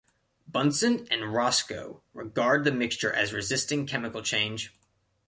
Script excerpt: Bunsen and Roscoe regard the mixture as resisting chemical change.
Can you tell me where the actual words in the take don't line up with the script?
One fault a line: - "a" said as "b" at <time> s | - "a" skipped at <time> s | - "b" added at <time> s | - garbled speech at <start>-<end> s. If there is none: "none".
none